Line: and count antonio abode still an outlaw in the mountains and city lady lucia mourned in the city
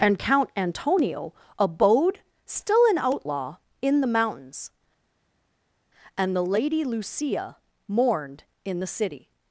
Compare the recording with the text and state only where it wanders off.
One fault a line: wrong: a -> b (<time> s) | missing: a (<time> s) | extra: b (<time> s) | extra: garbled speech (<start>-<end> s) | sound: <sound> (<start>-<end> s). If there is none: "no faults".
wrong: city -> the (6.4 s)